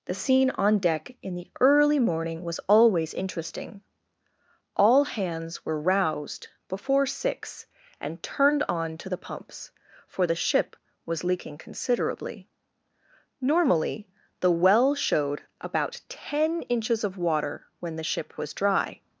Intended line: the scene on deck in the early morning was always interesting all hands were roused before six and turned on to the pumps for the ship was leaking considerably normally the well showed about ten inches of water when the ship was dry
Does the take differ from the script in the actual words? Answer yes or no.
no